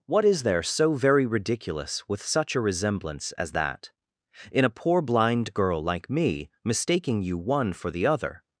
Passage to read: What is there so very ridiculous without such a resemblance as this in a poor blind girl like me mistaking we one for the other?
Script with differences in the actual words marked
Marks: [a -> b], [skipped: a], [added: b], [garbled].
What is there so very ridiculous [without -> with] such a resemblance as [this -> that] in a poor blind girl like me mistaking [we -> you] one for the other?